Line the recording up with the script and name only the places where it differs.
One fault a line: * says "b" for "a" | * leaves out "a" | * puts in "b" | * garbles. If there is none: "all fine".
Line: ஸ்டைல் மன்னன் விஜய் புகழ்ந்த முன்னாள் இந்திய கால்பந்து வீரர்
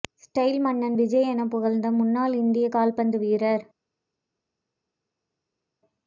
* puts in "என"